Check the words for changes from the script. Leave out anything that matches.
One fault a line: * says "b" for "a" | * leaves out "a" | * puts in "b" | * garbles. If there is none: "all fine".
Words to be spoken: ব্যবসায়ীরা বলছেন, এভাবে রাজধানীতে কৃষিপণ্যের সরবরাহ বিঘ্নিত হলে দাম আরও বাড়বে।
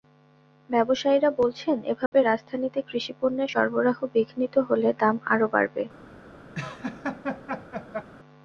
all fine